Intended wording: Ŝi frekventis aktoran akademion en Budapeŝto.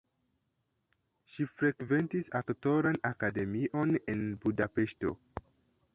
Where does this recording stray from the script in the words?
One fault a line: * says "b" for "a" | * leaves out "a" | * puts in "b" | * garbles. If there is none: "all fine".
all fine